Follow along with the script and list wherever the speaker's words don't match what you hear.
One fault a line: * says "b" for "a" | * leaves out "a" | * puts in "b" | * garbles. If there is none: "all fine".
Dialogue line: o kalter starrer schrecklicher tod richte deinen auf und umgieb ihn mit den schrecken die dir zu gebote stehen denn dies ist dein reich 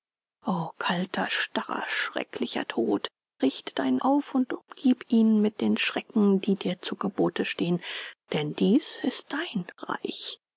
all fine